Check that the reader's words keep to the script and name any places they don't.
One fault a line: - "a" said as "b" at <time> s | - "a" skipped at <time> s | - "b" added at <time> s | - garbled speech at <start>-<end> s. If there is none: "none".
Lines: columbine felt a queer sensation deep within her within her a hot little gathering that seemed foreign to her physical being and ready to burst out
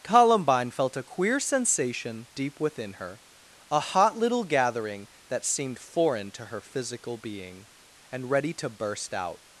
- "within her" skipped at 3.2 s